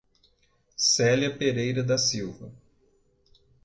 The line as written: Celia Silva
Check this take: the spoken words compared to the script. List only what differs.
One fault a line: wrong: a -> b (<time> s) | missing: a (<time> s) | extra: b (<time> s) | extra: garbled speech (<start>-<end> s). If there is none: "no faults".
extra: Pereira da (1.4 s)